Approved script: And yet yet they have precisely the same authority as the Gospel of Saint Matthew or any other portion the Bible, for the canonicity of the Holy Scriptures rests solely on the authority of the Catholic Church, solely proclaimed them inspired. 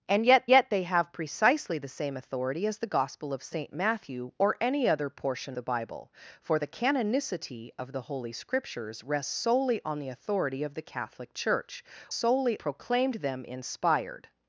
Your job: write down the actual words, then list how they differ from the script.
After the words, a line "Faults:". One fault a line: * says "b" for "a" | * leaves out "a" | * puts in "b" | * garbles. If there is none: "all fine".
And yet yet they have precisely the same authority as the Gospel of Saint Matthew or any other portion the Bible, for the canonicity of the Holy Scriptures rests solely on the authority of the Catholic Church, solely proclaimed them inspired.
Faults:
all fine